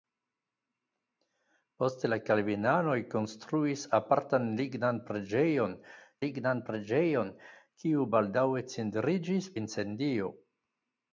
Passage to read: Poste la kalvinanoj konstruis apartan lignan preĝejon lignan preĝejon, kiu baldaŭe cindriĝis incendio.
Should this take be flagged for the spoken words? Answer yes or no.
no